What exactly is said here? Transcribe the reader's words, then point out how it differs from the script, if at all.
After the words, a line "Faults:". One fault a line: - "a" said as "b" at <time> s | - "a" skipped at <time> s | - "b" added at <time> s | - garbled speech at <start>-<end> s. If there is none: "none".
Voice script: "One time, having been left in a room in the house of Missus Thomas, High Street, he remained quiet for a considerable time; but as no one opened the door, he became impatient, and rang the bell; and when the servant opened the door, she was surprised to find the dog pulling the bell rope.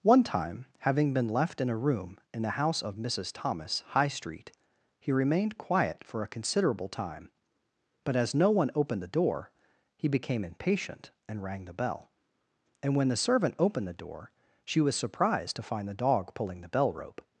"One time, having been left in a room in the house of Missus Thomas, High Street, he remained quiet for a considerable time; but as no one opened the door, he became impatient, and rang the bell; and when the servant opened the door, she was surprised to find the dog pulling the bell rope.
Faults:
none